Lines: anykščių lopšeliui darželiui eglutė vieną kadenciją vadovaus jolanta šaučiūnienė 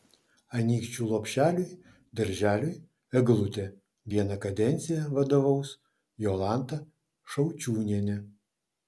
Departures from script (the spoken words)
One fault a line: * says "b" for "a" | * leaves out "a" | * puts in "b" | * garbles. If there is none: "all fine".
all fine